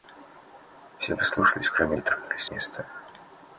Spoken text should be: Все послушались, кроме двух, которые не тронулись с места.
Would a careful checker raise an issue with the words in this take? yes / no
yes